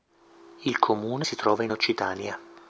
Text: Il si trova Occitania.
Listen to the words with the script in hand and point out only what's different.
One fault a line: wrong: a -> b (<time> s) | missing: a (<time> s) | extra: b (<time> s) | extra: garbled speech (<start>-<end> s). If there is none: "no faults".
extra: comune (0.8 s)
extra: in (1.6 s)